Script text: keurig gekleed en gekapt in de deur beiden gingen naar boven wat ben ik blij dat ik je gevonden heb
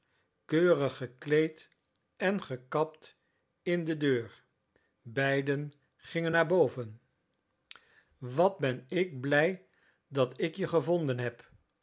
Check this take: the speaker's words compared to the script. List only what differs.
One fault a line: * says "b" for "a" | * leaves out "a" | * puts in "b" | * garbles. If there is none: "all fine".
all fine